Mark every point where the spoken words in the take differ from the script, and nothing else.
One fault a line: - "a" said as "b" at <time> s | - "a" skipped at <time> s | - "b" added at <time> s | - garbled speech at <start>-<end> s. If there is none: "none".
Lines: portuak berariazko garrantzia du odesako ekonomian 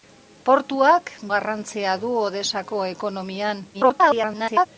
- "berariazko" skipped at 1.1 s
- garbled speech at 3.7-4.7 s